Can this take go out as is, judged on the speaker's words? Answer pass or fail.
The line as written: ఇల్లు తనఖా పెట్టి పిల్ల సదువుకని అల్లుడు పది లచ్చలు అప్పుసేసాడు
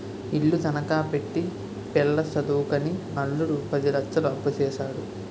pass